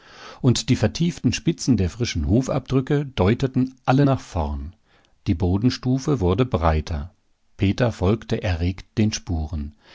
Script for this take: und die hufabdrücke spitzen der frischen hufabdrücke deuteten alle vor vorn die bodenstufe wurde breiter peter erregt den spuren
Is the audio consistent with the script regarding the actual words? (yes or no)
no